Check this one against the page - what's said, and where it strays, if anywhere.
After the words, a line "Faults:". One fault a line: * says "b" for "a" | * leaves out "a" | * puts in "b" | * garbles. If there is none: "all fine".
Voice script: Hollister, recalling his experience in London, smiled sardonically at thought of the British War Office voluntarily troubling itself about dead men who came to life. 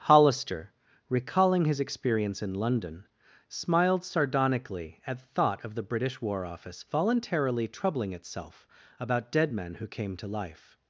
Hollister, recalling his experience in London, smiled sardonically at thought of the British War Office voluntarily troubling itself about dead men who came to life.
Faults:
all fine